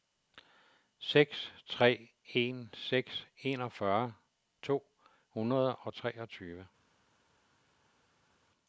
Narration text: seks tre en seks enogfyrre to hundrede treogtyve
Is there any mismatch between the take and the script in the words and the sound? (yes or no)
yes